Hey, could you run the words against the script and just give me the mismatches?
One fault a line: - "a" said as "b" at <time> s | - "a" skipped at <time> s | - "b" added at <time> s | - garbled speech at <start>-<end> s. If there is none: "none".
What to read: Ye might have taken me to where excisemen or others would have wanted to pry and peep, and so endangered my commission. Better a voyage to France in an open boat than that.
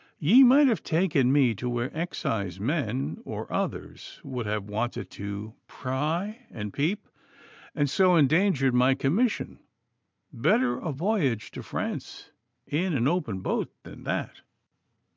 none